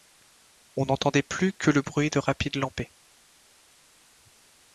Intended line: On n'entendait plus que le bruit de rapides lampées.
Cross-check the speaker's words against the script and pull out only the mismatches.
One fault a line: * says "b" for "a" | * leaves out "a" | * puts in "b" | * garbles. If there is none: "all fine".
all fine